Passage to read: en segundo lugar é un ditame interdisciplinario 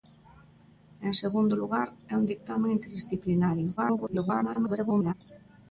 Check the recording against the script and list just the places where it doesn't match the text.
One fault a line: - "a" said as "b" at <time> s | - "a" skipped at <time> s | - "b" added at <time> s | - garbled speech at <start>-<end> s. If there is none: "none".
- garbled speech at 3.8-5.1 s